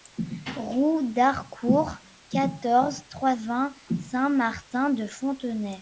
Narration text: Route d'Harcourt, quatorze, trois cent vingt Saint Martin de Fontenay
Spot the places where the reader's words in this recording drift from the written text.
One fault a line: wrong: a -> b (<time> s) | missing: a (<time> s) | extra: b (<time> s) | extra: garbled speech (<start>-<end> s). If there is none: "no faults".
missing: cent (3.4 s)